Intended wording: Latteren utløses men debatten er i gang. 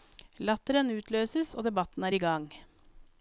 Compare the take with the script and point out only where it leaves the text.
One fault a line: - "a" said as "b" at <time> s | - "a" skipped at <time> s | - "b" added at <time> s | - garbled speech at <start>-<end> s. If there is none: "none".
- "men" said as "og" at 1.5 s